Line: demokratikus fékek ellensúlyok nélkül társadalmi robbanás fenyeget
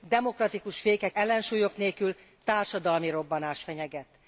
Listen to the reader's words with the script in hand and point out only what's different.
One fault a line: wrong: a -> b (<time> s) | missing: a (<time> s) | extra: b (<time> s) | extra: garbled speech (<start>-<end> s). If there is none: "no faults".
no faults